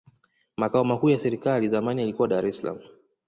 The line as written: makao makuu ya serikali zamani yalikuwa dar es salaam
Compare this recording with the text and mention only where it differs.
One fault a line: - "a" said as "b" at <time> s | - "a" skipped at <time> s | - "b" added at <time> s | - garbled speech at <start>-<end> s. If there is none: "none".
none